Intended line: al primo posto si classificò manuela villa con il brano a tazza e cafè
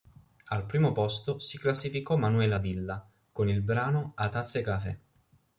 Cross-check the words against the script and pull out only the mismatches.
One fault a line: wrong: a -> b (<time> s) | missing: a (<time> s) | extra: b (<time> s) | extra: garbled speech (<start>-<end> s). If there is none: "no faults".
no faults